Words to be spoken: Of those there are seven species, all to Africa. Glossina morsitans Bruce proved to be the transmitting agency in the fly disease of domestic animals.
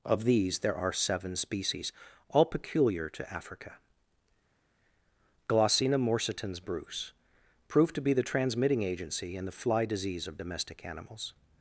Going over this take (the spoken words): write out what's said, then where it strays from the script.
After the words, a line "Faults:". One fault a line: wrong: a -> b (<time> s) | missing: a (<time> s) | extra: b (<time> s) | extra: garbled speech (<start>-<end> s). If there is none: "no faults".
Of these there are seven species, all peculiar to Africa. Glossina morsitans Bruce proved to be the transmitting agency in the fly disease of domestic animals.
Faults:
wrong: those -> these (0.2 s)
extra: peculiar (2.5 s)